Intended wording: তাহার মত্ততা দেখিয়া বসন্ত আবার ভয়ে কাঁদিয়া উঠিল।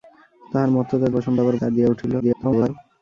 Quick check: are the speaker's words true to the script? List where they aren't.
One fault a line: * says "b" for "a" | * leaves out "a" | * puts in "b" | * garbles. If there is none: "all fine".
* leaves out "দেখিয়া"
* leaves out "ভয়ে"
* garbles